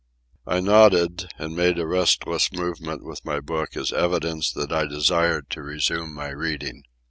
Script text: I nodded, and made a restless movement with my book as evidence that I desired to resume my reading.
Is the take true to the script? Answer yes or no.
yes